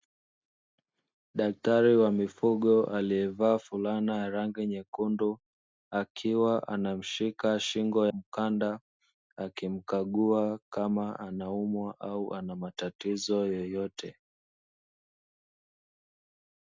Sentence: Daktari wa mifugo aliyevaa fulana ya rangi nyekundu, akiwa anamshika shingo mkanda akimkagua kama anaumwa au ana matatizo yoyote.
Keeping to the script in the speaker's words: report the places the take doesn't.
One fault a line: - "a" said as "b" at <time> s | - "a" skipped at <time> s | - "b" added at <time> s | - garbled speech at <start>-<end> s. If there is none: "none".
none